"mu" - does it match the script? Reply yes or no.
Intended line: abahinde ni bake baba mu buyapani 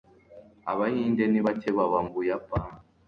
no